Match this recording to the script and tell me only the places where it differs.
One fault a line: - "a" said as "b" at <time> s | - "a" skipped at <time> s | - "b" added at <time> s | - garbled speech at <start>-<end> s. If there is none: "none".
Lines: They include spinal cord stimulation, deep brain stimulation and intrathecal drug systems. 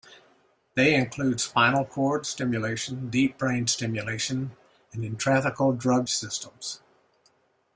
none